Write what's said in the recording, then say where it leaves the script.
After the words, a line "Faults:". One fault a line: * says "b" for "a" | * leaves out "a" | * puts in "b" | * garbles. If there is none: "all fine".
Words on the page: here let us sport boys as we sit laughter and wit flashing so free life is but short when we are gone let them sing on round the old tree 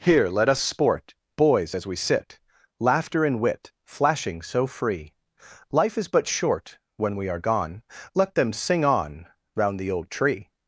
here let us sport boys as we sit laughter and wit flashing so free life is but short when we are gone let them sing on round the old tree
Faults:
all fine